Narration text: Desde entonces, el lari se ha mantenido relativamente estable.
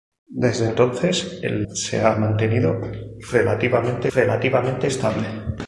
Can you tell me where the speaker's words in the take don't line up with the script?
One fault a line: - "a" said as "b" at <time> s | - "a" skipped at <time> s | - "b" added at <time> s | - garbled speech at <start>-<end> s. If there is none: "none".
- "lari" skipped at 1.7 s
- "relativamente" added at 4.1 s